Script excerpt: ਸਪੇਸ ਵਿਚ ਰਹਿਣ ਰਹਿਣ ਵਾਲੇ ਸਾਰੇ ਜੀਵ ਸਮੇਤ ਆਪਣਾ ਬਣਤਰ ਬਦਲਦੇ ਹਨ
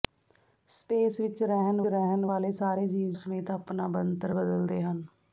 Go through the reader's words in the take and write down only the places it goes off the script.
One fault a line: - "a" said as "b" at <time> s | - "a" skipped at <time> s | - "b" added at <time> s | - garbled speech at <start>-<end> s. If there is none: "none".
none